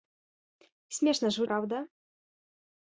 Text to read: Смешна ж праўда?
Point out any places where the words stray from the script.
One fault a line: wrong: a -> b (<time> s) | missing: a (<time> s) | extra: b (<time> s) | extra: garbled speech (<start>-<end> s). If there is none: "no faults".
no faults